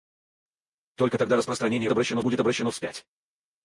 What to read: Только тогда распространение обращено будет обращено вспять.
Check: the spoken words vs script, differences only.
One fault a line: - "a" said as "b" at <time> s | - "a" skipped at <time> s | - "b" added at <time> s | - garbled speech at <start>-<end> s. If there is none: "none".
none